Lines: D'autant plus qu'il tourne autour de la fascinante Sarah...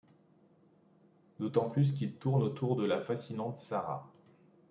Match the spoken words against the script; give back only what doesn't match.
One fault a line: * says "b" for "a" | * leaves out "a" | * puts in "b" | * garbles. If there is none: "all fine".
all fine